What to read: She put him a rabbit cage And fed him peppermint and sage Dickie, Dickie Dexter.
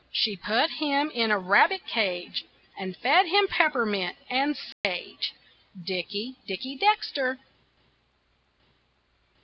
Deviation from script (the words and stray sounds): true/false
true